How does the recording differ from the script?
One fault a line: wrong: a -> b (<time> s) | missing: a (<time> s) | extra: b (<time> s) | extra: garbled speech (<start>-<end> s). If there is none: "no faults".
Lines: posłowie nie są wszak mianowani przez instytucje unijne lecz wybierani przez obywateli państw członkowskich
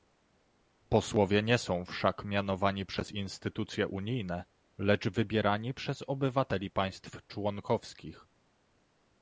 no faults